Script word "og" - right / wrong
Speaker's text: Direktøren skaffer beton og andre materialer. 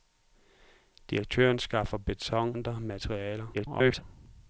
wrong